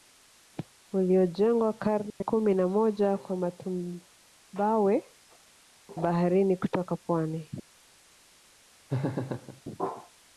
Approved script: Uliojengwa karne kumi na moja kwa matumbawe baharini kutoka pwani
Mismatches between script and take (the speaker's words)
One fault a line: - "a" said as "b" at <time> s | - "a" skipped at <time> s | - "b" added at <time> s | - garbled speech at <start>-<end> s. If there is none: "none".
none